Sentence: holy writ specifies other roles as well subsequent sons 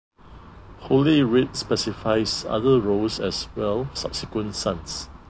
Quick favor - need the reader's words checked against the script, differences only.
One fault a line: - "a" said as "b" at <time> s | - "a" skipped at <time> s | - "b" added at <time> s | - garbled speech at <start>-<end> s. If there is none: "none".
none